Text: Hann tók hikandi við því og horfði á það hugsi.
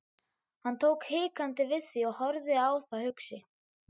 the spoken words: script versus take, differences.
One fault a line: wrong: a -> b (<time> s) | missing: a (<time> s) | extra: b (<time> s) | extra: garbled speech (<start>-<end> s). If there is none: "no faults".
no faults